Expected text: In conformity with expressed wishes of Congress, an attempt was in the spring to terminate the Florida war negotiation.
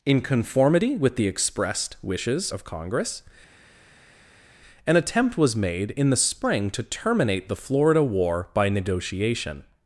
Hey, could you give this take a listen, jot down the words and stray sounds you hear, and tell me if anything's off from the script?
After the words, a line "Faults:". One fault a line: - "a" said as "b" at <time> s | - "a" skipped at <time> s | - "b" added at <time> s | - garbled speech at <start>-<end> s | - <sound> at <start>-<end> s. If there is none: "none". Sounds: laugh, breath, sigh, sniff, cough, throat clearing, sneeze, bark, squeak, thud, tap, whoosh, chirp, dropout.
In conformity with the expressed wishes of Congress, an attempt was made in the spring to terminate the Florida war by negotiation.
Faults:
- "the" added at 1.1 s
- "made" added at 5.5 s
- "by" added at 8.5 s